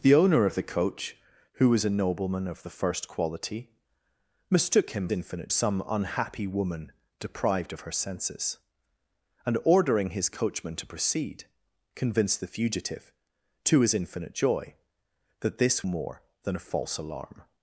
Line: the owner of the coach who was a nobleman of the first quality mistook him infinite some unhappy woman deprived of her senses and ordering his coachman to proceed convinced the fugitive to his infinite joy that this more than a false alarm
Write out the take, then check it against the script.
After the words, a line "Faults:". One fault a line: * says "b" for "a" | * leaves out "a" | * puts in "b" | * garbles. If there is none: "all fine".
the owner of the coach who was a nobleman of the first quality mistook him infinite some unhappy woman deprived of her senses and ordering his coachman to proceed convinced the fugitive to his infinite joy that this more than a false alarm
Faults:
all fine